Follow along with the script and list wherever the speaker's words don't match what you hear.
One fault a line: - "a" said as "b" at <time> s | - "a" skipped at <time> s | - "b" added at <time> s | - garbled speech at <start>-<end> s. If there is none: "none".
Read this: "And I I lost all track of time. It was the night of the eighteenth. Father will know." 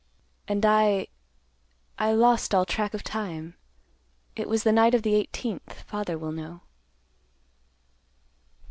none